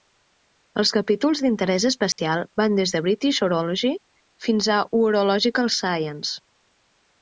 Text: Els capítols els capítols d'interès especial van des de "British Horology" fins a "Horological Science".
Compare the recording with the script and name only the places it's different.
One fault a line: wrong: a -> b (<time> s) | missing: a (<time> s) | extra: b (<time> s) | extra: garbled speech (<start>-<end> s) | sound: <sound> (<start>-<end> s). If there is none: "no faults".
missing: els capítols (1.4 s)
sound: dropout (2.1-2.2 s)